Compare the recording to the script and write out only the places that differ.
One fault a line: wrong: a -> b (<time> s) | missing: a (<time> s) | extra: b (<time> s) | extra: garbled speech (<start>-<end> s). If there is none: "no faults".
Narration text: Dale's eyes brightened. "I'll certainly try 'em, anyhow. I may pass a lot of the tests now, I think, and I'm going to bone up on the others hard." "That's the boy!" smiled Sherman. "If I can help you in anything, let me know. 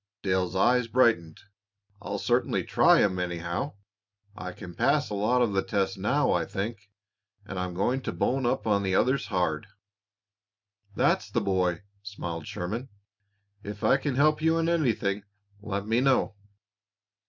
wrong: may -> can (4.5 s)